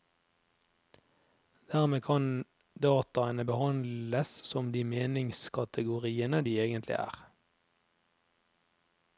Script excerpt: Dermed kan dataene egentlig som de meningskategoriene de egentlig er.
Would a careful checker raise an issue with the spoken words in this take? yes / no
yes